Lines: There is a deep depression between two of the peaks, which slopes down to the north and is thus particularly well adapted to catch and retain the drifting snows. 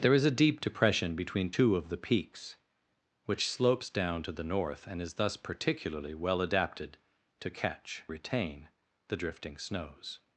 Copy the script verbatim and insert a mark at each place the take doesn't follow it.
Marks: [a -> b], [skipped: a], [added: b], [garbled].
There is a deep depression between two of the peaks, which slopes down to the north and is thus particularly well adapted to catch [skipped: and] retain the drifting snows.